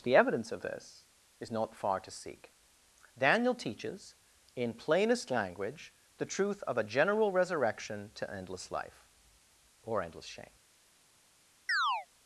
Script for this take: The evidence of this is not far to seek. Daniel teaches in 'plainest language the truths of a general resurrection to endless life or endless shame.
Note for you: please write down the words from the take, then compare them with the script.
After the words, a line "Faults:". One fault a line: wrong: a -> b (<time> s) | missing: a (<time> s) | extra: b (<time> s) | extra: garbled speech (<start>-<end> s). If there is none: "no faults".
The evidence of this is not far to seek. Daniel teaches in 'plainest language the truth of a general resurrection to endless life or endless shame.
Faults:
wrong: truths -> truth (6.2 s)